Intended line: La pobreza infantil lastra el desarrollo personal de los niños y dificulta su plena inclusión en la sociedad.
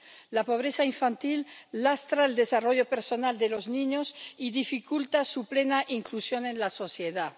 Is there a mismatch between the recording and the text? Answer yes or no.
no